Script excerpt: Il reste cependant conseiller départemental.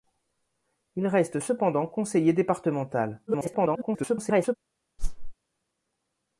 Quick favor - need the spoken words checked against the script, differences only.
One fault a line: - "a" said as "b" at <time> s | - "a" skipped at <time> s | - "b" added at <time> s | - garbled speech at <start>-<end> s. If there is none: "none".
- garbled speech at 3.3-4.6 s